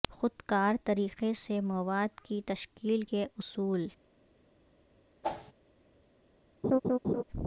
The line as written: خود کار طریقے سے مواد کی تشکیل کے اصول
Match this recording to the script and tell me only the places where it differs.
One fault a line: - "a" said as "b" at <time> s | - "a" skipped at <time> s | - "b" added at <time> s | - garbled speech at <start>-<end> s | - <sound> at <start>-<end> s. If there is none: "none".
- whoosh at 5.2-5.5 s
- laugh at 6.6-7.2 s